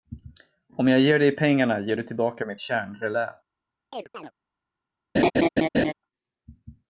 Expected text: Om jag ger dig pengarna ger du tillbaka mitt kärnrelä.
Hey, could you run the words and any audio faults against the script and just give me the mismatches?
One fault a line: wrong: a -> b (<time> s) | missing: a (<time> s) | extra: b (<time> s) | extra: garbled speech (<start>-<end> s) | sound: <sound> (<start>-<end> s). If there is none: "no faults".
sound: chirp (3.9-4.3 s)
sound: laugh (5.1-5.9 s)